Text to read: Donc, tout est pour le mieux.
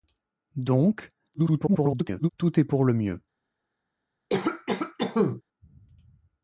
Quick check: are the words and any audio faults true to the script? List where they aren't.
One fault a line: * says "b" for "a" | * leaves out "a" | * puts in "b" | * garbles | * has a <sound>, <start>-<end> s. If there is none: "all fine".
* garbles
* has a cough, 4.3-5.4 s